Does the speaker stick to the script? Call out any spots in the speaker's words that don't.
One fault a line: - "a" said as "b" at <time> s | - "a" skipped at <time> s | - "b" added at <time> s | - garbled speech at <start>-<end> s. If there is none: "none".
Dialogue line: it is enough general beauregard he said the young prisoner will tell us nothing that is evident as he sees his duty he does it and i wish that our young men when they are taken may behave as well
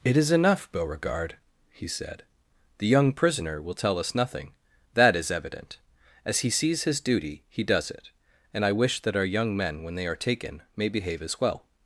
- "general" skipped at 0.7 s